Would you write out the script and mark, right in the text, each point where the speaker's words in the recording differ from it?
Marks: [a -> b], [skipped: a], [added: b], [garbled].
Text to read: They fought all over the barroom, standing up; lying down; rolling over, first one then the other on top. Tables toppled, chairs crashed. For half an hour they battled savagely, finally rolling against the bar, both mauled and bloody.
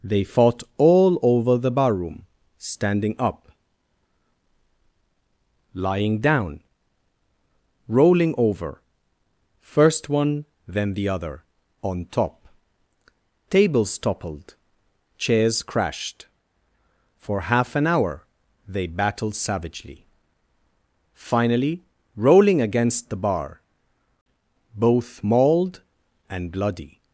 They fought all over the barroom, standing up; lying down; rolling over, first one then the other on top. Tables toppled, chairs crashed. For half an hour they battled savagely, finally rolling against the bar, both mauled and bloody.